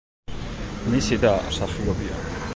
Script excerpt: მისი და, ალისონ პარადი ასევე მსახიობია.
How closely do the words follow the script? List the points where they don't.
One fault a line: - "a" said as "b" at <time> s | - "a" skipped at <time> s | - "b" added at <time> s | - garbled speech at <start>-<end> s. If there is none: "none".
- "ალისონ პარადი ასევე" skipped at 1.3 s